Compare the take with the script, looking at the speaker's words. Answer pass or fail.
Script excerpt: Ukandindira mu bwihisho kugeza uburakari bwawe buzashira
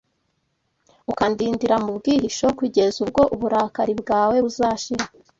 fail